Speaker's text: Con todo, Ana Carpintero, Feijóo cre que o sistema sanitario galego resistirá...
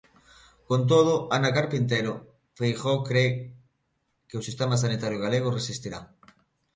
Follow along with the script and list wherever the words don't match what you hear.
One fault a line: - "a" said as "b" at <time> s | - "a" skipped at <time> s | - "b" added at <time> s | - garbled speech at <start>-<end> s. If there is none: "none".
none